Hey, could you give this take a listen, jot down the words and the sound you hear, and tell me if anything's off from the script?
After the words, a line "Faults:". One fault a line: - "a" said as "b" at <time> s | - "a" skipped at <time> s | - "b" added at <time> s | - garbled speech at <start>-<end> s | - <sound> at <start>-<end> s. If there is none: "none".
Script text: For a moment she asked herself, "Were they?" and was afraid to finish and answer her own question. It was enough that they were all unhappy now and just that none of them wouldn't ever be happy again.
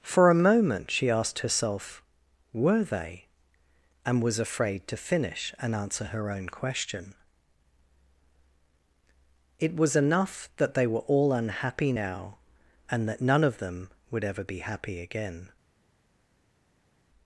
For a moment she asked herself, "Were they?" and was afraid to finish and answer her own question. It was enough that they were all unhappy now and that none of them would ever be happy again.
Faults:
- "just" skipped at 13.1 s
- "wouldn't" said as "would" at 14.1 s